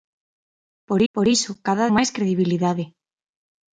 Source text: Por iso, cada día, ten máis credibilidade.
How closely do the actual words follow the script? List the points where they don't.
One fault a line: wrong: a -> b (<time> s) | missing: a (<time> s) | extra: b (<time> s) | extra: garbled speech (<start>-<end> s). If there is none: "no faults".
extra: por (1.1 s)
missing: día ten (1.9 s)